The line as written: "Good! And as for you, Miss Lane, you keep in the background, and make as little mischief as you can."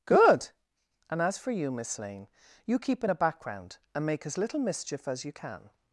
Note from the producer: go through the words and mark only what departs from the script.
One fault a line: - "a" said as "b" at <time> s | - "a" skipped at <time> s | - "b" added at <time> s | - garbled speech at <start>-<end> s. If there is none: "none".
- "the" said as "a" at 3.1 s